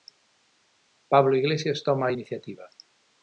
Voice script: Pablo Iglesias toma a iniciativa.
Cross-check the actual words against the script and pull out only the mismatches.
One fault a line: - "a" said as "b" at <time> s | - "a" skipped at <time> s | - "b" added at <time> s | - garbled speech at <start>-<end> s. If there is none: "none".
none